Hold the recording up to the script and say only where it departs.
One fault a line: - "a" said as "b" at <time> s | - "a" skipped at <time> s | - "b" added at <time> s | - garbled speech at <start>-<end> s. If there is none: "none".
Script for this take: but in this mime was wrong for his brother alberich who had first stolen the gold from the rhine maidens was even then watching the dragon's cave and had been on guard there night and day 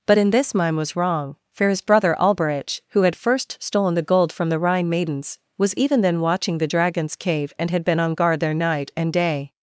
none